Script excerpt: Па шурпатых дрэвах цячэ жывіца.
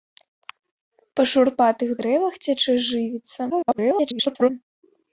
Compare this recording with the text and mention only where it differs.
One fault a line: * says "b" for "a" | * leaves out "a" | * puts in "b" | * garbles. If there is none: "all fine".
* garbles